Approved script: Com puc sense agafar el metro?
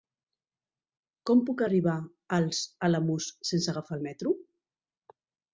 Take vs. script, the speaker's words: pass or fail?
fail